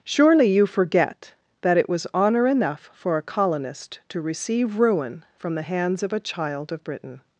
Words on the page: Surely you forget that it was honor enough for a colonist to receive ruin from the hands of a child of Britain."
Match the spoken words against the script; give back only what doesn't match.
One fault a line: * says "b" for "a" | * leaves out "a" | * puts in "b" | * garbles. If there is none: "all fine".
all fine